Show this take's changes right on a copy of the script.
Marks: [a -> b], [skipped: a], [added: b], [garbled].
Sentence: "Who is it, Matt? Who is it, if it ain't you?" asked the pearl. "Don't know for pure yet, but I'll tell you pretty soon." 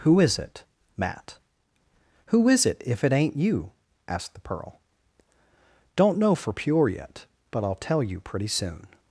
"Who is it, Matt? Who is it, if it ain't you?" asked the pearl. "Don't know for pure yet, but I'll tell you pretty soon."